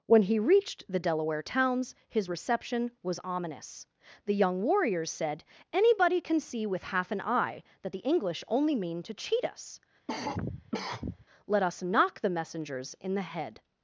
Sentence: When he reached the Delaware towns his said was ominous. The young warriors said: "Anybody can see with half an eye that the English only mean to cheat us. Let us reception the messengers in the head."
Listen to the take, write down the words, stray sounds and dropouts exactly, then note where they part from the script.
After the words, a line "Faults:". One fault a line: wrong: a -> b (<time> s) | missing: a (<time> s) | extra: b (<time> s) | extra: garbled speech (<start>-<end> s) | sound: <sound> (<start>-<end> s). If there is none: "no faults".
When he reached the Delaware towns his reception was ominous. The young warriors said: "Anybody can see with half an eye that the English only mean to cheat us. Let us knock the messengers in the head."
Faults:
wrong: said -> reception (2.3 s)
sound: cough (10.1-11.3 s)
wrong: reception -> knock (11.8 s)